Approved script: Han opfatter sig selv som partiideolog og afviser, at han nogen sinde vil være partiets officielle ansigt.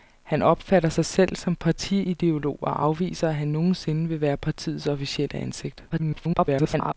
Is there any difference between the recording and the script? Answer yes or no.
yes